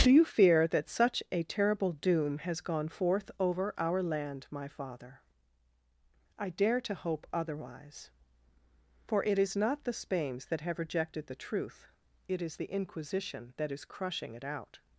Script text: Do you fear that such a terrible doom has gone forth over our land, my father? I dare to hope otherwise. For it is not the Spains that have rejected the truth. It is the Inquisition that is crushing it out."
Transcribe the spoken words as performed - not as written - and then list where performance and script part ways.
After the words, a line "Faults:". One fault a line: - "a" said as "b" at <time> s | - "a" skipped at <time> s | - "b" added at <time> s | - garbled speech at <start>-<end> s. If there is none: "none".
Do you fear that such a terrible doom has gone forth over our land, my father? I dare to hope otherwise. For it is not the Spains that have rejected the truth. It is the Inquisition that is crushing it out."
Faults:
none